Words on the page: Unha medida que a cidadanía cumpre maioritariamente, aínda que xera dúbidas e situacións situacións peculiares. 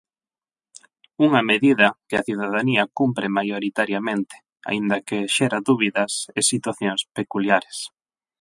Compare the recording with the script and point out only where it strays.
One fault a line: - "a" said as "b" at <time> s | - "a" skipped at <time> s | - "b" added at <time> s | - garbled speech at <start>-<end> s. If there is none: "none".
- "situacións" skipped at 7.0 s